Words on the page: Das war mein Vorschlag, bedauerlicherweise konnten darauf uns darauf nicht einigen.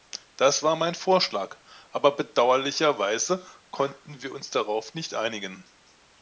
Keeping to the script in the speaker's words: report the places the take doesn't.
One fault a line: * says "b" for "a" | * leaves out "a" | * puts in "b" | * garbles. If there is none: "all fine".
* puts in "aber"
* says "wir" for "darauf"